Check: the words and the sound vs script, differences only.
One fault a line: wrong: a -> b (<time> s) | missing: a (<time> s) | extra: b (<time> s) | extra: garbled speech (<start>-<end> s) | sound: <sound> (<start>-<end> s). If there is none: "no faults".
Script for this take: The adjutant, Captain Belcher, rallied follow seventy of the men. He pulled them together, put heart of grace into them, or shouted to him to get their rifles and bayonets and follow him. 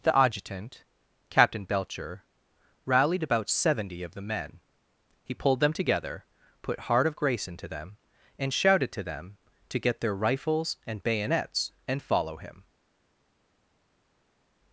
wrong: follow -> about (3.2 s)
wrong: or -> and (8.4 s)
wrong: him -> them (9.0 s)